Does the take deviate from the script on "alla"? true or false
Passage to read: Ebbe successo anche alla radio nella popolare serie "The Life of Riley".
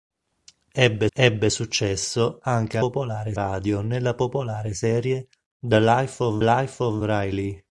true